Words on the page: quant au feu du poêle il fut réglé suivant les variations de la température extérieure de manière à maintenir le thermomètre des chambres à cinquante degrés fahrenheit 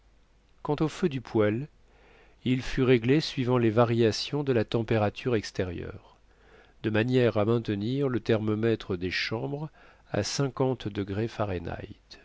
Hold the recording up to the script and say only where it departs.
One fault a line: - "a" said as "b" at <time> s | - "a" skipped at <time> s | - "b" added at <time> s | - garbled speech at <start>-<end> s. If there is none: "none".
none